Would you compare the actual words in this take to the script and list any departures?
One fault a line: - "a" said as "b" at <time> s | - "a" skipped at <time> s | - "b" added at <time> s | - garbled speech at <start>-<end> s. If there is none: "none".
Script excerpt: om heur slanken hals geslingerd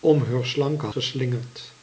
- "hals" skipped at 0.9 s